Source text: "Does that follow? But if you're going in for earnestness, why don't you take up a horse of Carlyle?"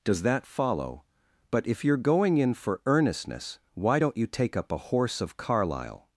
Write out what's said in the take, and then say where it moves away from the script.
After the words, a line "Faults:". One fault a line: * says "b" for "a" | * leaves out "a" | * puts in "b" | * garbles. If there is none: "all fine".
"Does that follow? But if you're going in for earnestness, why don't you take up a horse of Carlyle?"
Faults:
all fine